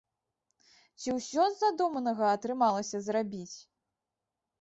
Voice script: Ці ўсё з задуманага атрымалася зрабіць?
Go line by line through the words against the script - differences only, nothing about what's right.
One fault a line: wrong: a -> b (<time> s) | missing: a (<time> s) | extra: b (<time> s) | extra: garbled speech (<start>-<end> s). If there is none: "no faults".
no faults